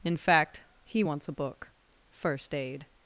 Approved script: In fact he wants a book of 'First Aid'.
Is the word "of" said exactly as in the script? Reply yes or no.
no